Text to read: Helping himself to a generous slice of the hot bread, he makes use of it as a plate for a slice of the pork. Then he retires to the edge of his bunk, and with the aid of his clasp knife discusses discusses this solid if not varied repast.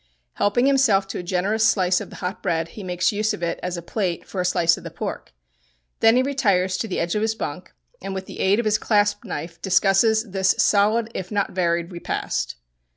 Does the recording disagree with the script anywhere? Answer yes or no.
yes